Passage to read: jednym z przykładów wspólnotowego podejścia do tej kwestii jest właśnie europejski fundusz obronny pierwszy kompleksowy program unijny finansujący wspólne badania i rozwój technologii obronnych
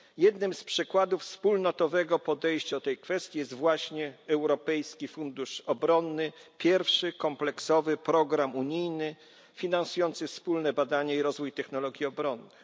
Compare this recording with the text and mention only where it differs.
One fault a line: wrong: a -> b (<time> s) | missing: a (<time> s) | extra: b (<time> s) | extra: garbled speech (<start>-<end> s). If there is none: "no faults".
no faults